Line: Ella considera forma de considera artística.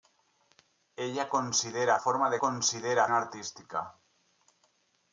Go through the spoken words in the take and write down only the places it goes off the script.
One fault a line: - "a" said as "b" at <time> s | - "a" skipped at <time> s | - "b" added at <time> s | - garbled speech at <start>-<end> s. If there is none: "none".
none